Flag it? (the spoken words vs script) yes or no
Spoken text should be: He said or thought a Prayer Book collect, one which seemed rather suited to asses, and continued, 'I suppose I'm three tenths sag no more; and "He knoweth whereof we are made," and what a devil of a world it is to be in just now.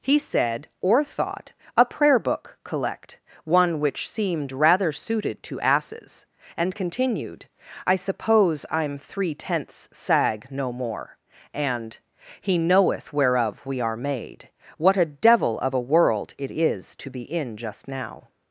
yes